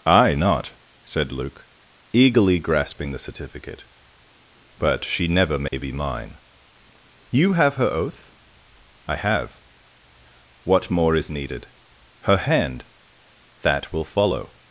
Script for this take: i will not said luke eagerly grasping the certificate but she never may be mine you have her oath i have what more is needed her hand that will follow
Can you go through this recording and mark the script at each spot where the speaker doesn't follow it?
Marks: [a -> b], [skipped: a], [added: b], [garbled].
i [skipped: will] not said luke eagerly grasping the certificate but she never may be mine you have her oath i have what more is needed her hand that will follow